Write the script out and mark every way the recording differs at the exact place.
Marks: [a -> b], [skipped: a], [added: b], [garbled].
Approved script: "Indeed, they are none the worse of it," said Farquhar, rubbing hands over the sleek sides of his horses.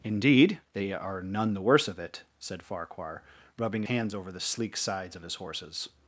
"Indeed, they are none the worse of it," said Farquhar, rubbing hands over the sleek sides of his horses.